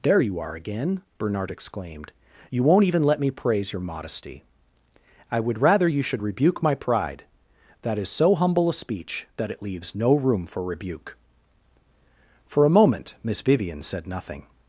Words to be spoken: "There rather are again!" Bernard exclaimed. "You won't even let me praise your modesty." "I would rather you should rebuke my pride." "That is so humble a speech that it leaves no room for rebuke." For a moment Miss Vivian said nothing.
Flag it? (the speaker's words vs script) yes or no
yes